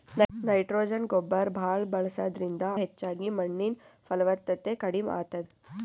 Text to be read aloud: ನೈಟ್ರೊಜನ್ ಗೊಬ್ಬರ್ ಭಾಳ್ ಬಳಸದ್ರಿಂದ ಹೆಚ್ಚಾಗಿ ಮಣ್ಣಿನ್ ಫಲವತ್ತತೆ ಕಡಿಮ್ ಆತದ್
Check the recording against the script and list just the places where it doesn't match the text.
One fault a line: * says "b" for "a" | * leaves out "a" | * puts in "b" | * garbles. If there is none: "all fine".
all fine